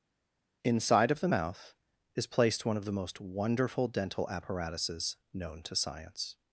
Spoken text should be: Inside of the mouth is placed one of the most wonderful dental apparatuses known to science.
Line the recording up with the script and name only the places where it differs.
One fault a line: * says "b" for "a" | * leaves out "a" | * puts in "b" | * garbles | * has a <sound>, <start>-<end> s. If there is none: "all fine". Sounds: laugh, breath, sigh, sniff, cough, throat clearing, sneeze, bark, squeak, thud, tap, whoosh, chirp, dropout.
all fine